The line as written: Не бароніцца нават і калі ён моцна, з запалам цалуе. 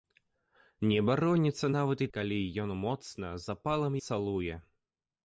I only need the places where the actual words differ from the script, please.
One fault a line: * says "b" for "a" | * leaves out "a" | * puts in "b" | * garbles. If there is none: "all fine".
all fine